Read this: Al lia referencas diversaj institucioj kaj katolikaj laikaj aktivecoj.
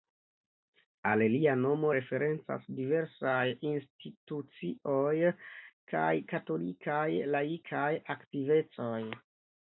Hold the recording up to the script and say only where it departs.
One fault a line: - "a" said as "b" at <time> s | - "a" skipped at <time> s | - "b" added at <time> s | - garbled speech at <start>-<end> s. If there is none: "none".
- "nomo" added at 1.6 s